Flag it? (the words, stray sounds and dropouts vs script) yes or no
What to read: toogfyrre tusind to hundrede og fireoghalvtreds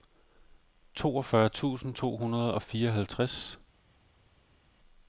no